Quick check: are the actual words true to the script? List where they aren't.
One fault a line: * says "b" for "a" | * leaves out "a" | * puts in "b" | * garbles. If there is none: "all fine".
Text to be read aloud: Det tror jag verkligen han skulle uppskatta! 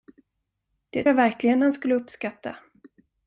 * leaves out "tror"